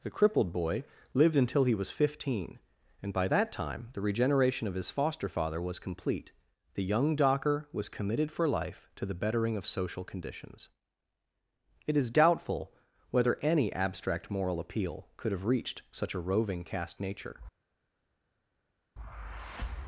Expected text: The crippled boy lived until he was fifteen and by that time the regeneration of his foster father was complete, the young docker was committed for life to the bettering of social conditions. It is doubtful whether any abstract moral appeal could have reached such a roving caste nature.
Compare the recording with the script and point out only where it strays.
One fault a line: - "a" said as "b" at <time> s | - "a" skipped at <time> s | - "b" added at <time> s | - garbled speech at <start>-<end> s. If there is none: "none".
none